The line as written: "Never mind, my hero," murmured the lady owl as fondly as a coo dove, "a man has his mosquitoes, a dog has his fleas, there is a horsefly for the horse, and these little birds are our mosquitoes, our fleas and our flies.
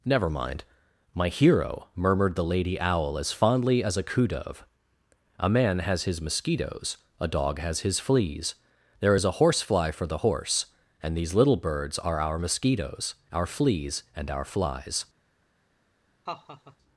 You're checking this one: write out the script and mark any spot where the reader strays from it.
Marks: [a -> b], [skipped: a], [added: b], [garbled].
"Never mind, my hero," murmured the lady owl as fondly as a coo dove, "a man has his mosquitoes, a dog has his fleas, there is a horsefly for the horse, and these little birds are our mosquitoes, our fleas and our flies.